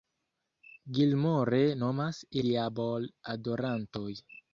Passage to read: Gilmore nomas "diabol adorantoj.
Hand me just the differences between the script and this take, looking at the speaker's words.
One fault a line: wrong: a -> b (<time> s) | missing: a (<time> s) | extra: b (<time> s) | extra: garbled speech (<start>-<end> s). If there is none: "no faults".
no faults